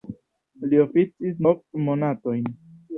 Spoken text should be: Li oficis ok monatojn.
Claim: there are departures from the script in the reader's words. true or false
false